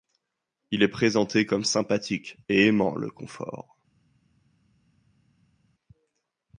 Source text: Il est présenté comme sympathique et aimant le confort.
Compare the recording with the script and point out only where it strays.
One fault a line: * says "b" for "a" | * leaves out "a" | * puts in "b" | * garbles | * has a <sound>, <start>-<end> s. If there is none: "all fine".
all fine